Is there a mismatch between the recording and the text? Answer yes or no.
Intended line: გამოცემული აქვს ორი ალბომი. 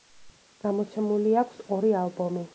no